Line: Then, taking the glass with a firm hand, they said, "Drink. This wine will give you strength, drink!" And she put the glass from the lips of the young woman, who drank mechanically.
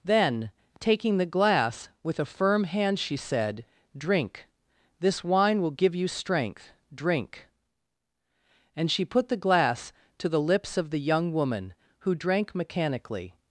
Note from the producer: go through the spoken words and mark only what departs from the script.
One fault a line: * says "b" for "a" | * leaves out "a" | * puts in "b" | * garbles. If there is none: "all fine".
* says "she" for "they"
* says "to" for "from"